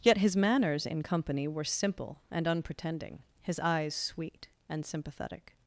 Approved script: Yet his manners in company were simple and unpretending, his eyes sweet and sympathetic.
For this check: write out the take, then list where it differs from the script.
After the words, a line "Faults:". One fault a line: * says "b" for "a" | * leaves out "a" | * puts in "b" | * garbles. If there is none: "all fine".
Yet his manners in company were simple and unpretending, his eyes sweet and sympathetic.
Faults:
all fine